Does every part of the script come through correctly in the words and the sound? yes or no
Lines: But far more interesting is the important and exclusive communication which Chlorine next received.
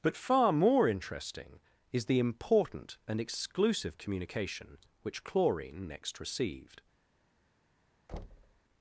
no